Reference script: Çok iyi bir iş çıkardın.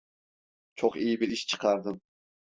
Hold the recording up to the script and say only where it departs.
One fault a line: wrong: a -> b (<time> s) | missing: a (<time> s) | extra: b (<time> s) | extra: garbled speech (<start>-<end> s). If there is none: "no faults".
no faults